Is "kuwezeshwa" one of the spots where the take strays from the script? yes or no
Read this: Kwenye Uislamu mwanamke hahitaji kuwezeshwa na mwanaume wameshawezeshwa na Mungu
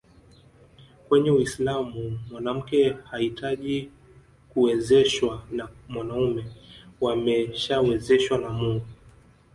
no